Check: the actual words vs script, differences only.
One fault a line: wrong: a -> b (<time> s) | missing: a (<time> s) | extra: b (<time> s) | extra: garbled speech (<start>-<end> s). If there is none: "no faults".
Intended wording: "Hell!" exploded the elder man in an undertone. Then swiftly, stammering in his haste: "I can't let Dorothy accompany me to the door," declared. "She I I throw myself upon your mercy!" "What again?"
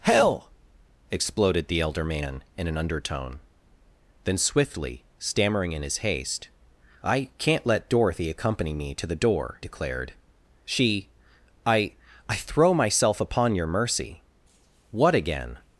no faults